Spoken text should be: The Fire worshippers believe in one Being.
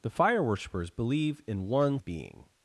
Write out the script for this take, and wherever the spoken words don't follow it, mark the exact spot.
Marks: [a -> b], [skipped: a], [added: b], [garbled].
The Fire worshippers believe in one Being.